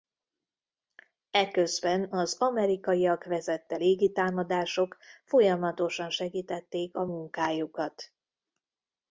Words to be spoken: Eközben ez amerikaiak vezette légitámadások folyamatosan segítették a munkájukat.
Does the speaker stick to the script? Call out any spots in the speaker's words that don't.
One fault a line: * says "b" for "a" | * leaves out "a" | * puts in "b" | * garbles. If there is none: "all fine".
* says "az" for "ez"